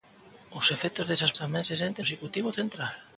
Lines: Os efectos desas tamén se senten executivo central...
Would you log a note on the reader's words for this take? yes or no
no